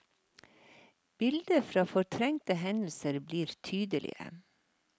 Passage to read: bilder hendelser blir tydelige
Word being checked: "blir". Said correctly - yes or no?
yes